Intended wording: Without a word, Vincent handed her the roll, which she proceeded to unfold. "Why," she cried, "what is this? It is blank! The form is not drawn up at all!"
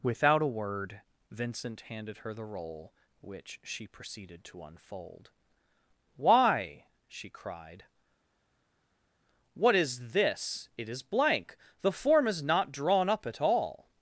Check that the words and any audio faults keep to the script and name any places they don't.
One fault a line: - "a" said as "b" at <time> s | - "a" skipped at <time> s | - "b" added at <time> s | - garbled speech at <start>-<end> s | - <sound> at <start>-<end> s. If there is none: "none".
none